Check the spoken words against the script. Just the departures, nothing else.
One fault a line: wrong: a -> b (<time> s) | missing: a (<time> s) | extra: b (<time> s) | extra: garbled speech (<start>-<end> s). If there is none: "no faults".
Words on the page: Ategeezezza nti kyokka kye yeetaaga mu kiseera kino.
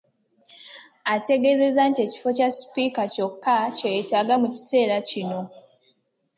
extra: ekifo kya Sipiika (2.0 s)